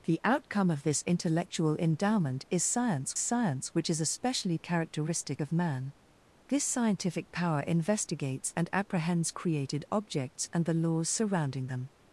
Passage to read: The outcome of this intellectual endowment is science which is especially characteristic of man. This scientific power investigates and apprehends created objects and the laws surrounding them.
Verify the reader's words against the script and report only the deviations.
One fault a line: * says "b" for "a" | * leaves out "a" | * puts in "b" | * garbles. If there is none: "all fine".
* puts in "science"